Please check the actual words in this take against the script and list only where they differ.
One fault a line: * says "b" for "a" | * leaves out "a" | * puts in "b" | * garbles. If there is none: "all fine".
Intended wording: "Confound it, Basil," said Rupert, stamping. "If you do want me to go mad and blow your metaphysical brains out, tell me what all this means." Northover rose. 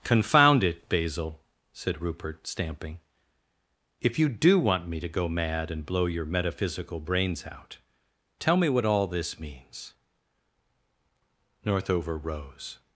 all fine